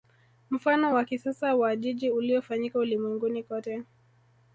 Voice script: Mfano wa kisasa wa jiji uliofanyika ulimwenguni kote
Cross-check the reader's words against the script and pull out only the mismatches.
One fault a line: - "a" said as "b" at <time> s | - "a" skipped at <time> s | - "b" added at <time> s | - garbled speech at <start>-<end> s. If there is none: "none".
none